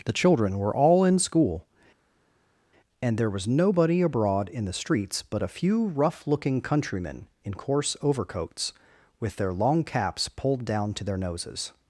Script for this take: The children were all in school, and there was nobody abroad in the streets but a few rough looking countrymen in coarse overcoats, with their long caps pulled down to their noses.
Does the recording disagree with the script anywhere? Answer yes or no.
no